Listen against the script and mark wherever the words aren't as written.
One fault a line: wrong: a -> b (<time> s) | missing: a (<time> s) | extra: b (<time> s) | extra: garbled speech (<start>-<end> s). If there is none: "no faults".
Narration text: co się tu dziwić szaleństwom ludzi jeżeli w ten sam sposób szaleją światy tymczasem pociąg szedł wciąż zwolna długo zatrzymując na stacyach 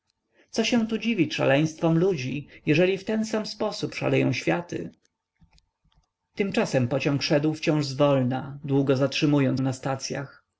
no faults